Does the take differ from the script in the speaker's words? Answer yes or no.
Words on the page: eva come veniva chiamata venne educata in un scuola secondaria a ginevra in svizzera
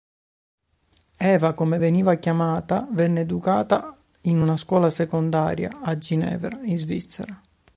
yes